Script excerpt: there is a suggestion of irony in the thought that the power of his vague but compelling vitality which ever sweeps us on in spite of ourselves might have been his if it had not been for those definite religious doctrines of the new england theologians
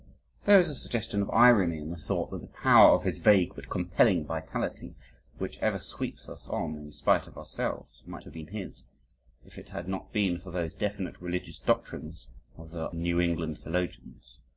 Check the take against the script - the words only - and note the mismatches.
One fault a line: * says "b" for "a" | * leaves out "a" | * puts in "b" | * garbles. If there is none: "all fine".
all fine